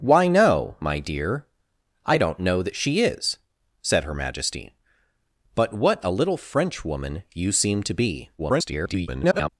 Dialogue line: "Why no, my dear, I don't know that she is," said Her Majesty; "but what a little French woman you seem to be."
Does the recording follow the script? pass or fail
fail